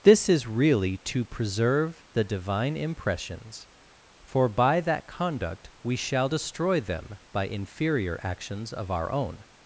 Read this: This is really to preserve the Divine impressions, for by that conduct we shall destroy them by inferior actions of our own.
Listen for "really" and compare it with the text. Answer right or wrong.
right